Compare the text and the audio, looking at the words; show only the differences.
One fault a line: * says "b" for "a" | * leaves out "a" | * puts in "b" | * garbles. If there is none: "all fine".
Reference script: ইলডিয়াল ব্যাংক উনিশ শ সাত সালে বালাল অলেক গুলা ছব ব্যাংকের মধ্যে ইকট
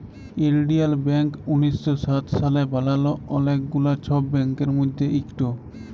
all fine